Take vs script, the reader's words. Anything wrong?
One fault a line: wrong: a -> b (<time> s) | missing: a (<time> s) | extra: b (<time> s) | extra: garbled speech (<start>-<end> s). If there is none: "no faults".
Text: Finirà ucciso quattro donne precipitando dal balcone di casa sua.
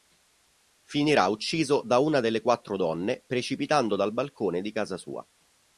extra: da una delle (1.8 s)